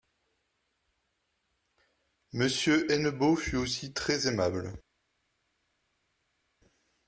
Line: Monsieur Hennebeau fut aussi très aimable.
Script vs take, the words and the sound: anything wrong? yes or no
no